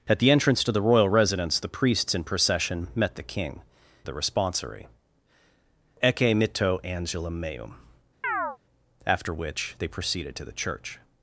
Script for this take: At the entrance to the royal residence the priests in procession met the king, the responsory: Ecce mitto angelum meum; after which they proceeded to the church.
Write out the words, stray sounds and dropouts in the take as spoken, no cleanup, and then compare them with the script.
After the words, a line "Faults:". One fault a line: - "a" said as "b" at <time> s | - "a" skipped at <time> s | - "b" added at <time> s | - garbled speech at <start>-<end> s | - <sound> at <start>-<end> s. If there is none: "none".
At the entrance to the royal residence the priests in procession met the king, the responsory: Ecce mitto angelum meum; after which they proceeded to the church.
Faults:
- chirp at 8.2-8.6 s